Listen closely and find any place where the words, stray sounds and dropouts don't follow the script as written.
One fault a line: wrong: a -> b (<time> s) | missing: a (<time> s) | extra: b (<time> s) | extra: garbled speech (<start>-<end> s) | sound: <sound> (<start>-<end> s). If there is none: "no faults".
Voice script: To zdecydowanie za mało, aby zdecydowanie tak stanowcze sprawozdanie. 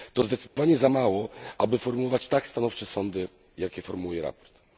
sound: dropout (0.5-0.6 s)
wrong: zdecydowanie -> formułować (1.8 s)
extra: sądy jakie formułuje (2.9 s)